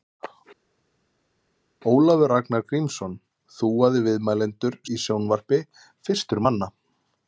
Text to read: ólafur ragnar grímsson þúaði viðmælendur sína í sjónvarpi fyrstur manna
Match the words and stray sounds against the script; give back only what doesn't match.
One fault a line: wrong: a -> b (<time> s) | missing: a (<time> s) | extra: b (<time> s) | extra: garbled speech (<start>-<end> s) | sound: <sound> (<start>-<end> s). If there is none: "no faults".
missing: sína (4.8 s)